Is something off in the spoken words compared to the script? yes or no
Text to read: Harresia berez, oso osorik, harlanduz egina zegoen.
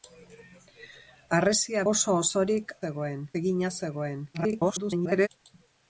yes